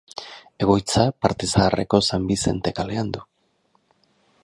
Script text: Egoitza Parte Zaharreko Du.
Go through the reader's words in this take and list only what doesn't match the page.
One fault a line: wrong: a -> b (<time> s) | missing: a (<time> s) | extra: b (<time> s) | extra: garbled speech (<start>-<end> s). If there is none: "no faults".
extra: San Bizente kalean (2.1 s)